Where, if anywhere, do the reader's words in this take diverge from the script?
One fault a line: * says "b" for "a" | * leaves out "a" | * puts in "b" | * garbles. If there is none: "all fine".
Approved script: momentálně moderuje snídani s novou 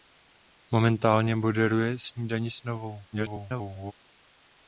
* garbles